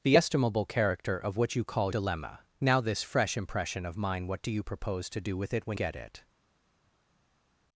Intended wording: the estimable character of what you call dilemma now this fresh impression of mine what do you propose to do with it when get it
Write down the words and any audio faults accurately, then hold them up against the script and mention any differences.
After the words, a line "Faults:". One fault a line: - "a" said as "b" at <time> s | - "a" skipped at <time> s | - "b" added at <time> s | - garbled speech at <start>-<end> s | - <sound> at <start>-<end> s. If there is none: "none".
the estimable character of what you call dilemma now this fresh impression of mine what do you propose to do with it when get it
Faults:
none